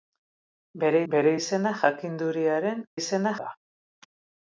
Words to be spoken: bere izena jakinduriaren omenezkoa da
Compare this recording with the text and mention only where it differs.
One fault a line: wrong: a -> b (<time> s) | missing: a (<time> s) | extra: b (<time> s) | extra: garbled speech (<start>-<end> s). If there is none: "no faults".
extra: bere (1.1 s)
wrong: omenezkoa -> izena (3.0 s)